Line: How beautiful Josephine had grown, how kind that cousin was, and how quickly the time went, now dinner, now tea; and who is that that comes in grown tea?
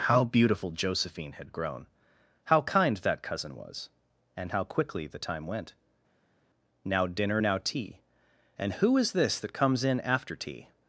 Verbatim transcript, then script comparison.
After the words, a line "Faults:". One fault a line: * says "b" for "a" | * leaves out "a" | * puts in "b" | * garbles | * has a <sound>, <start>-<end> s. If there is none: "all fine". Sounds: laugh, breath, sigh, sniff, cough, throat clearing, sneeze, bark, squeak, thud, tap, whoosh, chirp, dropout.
How beautiful Josephine had grown, how kind that cousin was, and how quickly the time went, now dinner, now tea; and who is this that comes in after tea?
Faults:
* says "this" for "that"
* says "after" for "grown"